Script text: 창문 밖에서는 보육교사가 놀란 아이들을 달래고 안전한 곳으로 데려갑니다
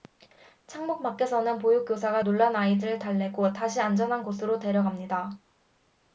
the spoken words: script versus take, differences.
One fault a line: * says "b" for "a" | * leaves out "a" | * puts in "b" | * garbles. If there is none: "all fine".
* puts in "다시"